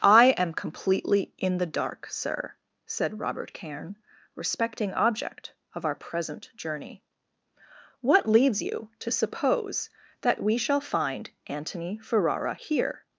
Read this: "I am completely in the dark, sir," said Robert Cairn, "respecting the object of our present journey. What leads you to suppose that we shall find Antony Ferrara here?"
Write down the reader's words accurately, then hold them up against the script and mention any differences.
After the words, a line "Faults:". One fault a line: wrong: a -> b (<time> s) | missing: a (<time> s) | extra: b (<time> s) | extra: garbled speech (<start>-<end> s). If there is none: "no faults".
"I am completely in the dark, sir," said Robert Cairn, "respecting object of our present journey. What leads you to suppose that we shall find Antony Ferrara here?"
Faults:
missing: the (4.9 s)